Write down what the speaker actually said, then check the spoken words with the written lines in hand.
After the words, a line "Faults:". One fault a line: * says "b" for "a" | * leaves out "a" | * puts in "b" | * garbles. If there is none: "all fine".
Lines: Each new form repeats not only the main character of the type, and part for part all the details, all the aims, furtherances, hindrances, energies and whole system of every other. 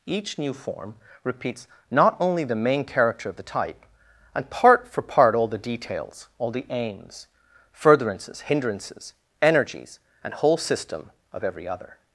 Each new form repeats not only the main character of the type, and part for part all the details, all the aims, furtherances, hindrances, energies and whole system of every other.
Faults:
all fine